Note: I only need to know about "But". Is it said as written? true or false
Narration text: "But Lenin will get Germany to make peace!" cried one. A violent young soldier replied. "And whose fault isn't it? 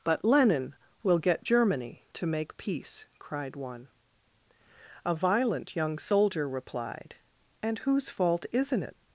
true